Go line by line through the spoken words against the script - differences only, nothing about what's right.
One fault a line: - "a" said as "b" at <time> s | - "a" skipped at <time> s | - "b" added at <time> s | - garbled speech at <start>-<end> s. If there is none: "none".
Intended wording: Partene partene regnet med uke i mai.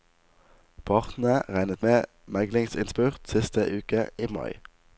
- "partene" skipped at 1.4 s
- "meglingsinnspurt siste" added at 2.3 s